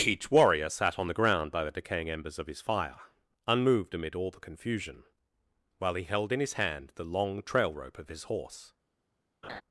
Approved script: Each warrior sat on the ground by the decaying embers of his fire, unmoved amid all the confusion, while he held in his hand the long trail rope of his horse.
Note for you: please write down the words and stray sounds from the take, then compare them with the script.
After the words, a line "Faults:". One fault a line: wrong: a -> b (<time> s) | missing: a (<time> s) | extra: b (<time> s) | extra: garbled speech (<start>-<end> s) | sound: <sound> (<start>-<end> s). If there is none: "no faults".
Each warrior sat on the ground by the decaying embers of his fire, unmoved amid all the confusion, while he held in his hand the long trail rope of his horse.
Faults:
sound: laugh (9.4-9.6 s)